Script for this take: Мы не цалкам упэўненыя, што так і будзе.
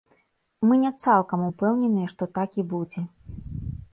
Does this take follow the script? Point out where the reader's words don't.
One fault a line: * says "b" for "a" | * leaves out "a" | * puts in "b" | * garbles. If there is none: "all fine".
all fine